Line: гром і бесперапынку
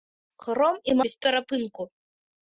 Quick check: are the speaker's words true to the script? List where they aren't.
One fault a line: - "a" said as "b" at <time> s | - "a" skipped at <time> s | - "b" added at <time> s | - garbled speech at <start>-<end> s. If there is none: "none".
none